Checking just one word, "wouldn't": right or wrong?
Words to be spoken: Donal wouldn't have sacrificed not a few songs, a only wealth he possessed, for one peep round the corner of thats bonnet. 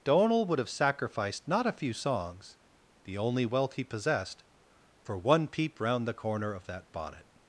wrong